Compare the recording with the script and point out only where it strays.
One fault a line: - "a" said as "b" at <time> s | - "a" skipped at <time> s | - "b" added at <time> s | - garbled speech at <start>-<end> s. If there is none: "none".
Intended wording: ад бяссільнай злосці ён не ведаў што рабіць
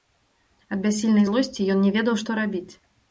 none